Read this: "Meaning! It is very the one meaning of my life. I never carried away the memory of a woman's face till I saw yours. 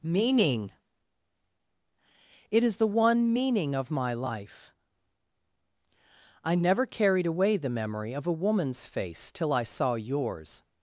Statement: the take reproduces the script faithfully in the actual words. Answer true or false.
false